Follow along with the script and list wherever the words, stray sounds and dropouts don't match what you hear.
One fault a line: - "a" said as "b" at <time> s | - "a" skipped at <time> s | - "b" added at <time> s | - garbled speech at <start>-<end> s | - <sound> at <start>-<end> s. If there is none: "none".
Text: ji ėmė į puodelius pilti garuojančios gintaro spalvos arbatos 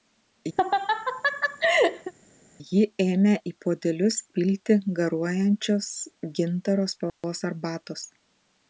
- laugh at 0.6-2.1 s
- dropout at 7.1-7.2 s